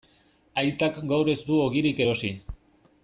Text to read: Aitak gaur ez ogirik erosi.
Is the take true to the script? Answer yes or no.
no